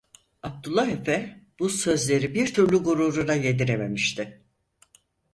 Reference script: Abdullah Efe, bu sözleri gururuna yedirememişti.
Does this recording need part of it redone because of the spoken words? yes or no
yes